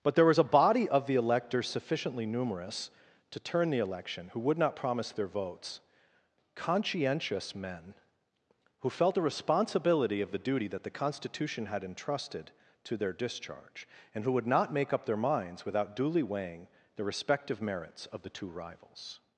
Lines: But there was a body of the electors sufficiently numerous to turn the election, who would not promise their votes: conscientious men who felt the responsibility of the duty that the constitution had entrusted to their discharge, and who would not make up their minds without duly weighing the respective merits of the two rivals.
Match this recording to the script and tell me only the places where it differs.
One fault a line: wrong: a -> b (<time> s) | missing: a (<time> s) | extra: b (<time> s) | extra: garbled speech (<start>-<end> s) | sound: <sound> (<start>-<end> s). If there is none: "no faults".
no faults